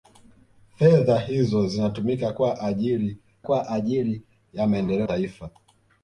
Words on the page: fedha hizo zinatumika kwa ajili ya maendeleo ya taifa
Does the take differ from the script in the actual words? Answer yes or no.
yes